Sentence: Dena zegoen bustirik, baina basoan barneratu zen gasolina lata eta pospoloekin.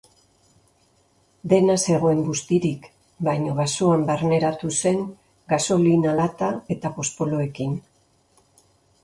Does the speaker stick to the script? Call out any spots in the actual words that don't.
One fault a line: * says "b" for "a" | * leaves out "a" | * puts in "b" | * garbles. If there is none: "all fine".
all fine